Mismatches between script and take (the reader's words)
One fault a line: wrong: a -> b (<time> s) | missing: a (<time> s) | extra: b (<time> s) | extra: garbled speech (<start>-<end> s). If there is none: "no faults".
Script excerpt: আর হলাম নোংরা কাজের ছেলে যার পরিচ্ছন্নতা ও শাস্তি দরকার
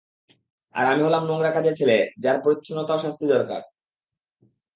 extra: আমি (0.8 s)